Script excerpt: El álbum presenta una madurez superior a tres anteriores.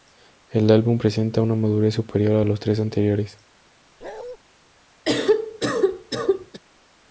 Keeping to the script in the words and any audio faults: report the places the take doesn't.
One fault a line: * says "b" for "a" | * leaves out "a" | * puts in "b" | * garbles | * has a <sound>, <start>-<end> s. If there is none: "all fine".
* puts in "los"
* has a bark, 4.0-4.4 s
* has a cough, 5.1-6.6 s